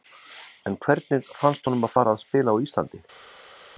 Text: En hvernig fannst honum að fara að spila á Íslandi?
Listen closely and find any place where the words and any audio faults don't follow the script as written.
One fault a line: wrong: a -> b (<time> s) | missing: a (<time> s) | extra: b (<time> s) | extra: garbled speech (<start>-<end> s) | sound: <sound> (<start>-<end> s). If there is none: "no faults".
no faults